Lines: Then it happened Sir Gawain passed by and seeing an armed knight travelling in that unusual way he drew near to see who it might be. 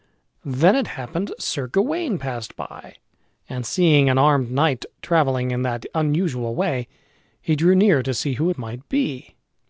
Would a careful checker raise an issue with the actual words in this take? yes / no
no